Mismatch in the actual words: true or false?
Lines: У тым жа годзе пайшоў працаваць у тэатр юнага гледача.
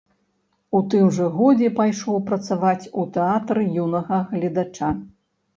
false